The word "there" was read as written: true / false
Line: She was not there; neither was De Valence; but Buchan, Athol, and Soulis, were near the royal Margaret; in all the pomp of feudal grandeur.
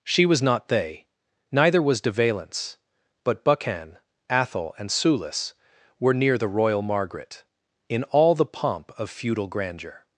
false